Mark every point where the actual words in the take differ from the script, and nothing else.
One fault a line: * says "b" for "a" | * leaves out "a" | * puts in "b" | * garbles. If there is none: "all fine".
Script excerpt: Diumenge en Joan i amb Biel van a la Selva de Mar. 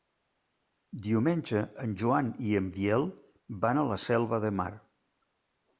* says "en" for "amb"